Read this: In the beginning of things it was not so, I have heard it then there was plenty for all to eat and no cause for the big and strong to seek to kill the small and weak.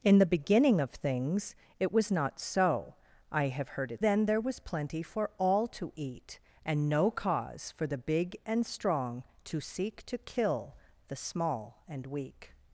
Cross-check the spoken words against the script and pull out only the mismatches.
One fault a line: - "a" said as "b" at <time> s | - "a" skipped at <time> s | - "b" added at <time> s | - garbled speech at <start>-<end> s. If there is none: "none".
none